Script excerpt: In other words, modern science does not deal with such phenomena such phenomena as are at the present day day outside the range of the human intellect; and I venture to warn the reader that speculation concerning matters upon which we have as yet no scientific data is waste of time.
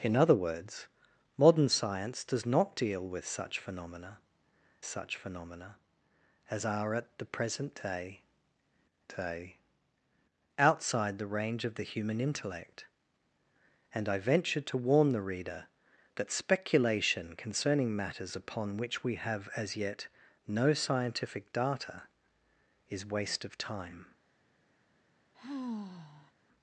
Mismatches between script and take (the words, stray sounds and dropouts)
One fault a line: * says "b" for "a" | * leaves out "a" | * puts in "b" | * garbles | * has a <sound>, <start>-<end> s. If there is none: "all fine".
* has a sigh, 25.3-26.3 s